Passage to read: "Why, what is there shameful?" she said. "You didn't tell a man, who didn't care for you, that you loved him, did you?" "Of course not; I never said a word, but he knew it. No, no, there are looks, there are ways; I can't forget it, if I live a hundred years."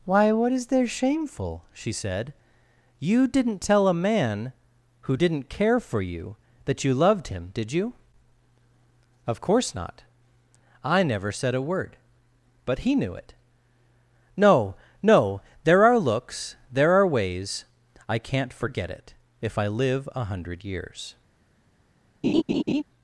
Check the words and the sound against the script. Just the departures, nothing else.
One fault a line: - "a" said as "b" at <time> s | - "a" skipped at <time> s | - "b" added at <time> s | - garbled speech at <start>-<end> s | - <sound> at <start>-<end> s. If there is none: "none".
- laugh at 22.2-22.8 s